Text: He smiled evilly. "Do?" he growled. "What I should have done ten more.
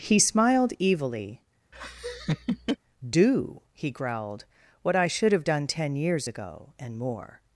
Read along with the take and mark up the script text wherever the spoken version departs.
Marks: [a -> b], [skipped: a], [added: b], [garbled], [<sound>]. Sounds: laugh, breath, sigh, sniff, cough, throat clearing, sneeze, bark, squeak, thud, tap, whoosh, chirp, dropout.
He smiled evilly. [laugh] "Do?" he growled. "What I should have done ten [added: years ago and] more.